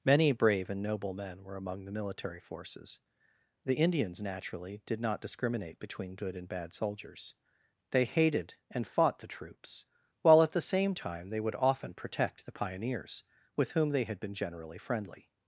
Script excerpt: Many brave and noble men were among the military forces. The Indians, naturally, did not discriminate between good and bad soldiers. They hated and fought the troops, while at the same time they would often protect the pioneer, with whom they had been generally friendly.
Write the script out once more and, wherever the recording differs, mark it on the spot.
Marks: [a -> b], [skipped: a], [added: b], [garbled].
Many brave and noble men were among the military forces. The Indians, naturally, did not discriminate between good and bad soldiers. They hated and fought the troops, while at the same time they would often protect the [pioneer, -> pioneers] with whom they had been generally friendly.